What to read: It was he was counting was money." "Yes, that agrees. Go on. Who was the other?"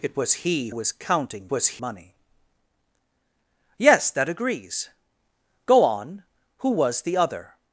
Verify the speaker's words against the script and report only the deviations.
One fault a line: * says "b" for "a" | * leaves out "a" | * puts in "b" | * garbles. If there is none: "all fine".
all fine